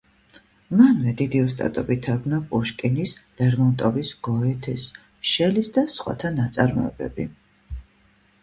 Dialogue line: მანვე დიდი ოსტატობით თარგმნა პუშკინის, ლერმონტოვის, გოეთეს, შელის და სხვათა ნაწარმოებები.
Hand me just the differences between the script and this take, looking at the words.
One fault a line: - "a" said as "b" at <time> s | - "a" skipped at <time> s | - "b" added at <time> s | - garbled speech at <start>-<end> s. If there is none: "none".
none